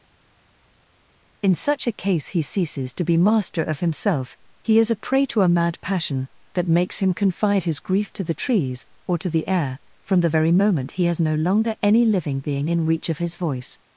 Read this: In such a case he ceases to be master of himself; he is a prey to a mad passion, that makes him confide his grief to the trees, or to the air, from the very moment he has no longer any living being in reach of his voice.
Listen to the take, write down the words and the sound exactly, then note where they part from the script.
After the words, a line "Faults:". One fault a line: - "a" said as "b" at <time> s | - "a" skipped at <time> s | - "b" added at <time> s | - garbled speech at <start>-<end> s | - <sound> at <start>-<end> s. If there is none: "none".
In such a case he ceases to be master of himself; he is a prey to a mad passion, that makes him confide his grief to the trees, or to the air, from the very moment he has no longer any living being in reach of his voice.
Faults:
none